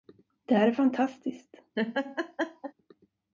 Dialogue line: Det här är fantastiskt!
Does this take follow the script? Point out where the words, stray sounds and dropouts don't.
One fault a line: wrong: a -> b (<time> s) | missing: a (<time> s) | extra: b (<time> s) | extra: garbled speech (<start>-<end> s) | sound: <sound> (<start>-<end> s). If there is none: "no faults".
sound: laugh (1.8-2.7 s)